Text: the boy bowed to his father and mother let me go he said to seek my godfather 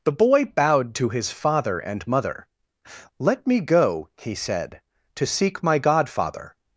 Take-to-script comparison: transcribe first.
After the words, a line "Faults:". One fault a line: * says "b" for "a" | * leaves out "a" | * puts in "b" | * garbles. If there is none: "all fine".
the boy bowed to his father and mother let me go he said to seek my godfather
Faults:
all fine